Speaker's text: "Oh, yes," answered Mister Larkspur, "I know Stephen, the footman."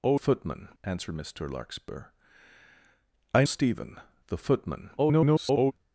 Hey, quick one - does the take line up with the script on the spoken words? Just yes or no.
no